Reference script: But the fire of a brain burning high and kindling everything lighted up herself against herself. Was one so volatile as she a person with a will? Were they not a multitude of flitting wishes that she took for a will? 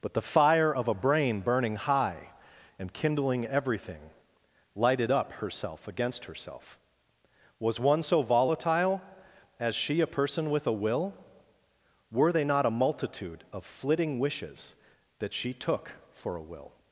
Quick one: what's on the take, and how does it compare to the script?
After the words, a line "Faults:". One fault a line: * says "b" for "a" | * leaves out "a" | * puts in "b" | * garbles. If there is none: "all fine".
But the fire of a brain burning high and kindling everything lighted up herself against herself. Was one so volatile as she a person with a will? Were they not a multitude of flitting wishes that she took for a will?
Faults:
all fine